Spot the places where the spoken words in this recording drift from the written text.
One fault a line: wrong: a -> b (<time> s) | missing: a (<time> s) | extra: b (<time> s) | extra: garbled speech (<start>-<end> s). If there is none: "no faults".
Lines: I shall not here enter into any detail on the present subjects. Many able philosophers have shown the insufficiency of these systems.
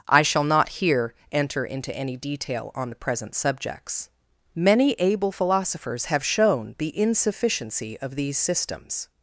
no faults